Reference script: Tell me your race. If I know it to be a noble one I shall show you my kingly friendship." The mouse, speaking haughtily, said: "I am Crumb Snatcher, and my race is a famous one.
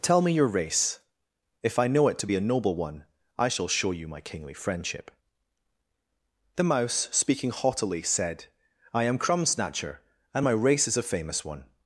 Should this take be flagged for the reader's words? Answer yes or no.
no